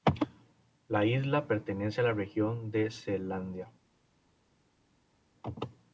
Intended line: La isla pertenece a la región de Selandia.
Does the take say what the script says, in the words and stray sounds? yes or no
yes